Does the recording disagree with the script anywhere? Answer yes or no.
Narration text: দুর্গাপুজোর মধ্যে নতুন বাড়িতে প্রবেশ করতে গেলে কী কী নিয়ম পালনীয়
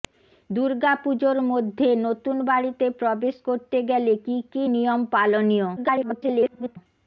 yes